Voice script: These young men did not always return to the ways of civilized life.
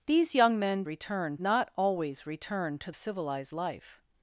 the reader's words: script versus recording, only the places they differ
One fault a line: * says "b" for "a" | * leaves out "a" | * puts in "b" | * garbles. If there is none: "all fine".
* says "return" for "did"
* leaves out "the ways of"